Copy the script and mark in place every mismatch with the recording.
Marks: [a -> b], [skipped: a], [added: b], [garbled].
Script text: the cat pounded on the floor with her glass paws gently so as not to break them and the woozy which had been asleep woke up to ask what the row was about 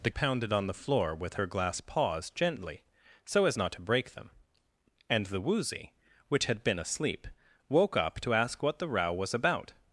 the [skipped: cat] pounded on the floor with her glass paws gently so as not to break them and the woozy which had been asleep woke up to ask what the row was about